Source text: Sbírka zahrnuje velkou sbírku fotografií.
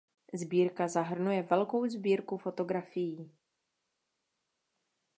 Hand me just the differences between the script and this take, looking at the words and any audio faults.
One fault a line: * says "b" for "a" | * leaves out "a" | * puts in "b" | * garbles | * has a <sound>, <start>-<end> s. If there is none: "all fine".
all fine